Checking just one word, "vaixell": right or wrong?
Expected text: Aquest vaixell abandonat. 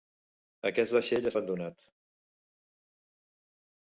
right